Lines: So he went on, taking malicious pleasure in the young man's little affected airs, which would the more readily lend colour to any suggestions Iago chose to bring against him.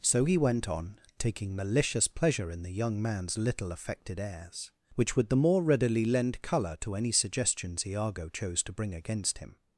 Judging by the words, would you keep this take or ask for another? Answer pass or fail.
pass